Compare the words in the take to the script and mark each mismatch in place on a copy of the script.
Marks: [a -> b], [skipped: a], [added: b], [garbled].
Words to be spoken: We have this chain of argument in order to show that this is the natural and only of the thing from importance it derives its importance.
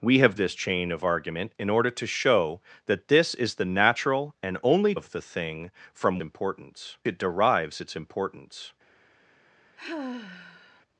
We have this chain of argument in order to show that this is the natural and only of the thing from importance it derives its importance.